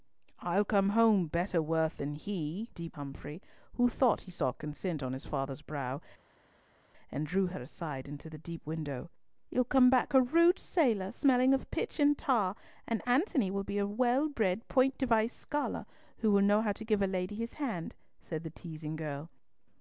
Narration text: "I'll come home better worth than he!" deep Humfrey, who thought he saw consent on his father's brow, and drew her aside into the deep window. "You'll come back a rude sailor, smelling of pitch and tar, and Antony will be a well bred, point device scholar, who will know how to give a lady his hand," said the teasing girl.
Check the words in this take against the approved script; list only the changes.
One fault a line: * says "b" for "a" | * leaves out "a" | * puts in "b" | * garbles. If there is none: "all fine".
all fine